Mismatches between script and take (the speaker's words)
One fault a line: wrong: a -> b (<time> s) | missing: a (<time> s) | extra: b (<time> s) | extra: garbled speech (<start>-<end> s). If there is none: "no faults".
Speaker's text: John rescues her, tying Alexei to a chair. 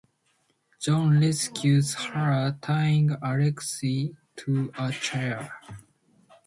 no faults